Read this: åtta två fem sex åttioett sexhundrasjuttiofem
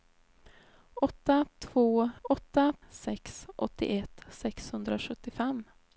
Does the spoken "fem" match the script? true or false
false